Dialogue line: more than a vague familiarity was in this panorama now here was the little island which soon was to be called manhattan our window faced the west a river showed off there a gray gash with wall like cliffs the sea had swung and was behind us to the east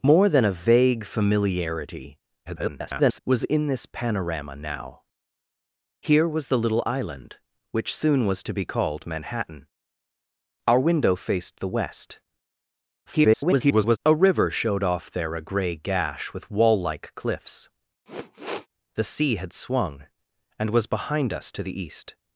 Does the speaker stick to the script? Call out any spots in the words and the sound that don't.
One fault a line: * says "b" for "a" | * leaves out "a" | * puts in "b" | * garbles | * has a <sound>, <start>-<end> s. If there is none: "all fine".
* garbles
* garbles
* has a sniff, 18.1-18.7 s